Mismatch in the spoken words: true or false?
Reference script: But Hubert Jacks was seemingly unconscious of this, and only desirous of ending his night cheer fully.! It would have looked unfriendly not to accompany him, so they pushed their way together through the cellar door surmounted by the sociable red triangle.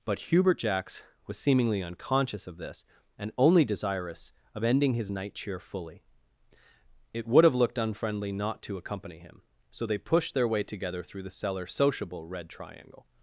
true